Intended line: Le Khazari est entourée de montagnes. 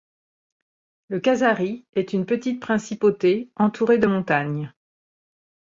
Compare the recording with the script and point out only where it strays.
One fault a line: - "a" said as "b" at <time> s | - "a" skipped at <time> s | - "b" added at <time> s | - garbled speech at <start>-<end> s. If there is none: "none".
- "une petite principauté" added at 2.1 s